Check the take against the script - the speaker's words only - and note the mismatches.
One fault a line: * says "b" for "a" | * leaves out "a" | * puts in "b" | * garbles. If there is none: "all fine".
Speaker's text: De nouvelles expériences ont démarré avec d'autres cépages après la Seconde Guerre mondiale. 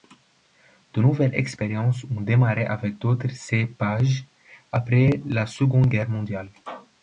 all fine